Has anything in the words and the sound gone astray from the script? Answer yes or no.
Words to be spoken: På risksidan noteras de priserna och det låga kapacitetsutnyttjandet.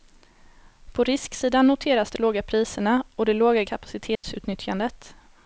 yes